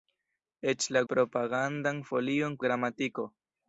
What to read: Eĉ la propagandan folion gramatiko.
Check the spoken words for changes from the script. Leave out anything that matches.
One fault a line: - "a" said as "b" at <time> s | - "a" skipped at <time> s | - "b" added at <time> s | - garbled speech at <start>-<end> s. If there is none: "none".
none